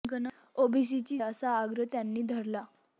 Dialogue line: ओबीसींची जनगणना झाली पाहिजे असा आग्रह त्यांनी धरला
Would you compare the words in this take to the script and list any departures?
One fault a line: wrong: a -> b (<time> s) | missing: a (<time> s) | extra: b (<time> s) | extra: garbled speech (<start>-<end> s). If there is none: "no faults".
missing: जनगणना झाली पाहिजे (1.2 s)